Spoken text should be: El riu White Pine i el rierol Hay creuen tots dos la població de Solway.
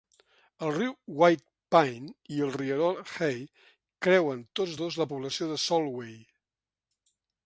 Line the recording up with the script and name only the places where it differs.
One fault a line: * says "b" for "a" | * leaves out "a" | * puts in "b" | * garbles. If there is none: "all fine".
all fine